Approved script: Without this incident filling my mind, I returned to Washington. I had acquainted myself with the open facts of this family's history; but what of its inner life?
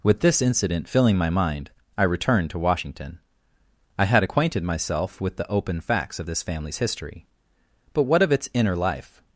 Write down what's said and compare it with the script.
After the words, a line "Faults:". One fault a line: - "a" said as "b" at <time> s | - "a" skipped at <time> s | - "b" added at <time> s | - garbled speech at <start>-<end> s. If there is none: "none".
With this incident filling my mind, I returned to Washington. I had acquainted myself with the open facts of this family's history; but what of its inner life?
Faults:
- "Without" said as "With" at 0.0 s